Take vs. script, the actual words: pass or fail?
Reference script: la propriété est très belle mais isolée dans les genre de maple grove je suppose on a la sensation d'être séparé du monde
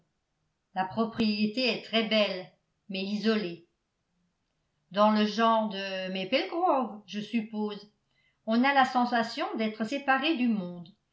fail